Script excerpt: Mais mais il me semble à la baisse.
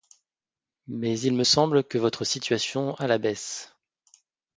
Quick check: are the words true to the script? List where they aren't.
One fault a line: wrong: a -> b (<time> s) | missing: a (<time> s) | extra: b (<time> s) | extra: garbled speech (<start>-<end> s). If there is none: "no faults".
missing: mais (1.2 s)
extra: que votre situation (1.8 s)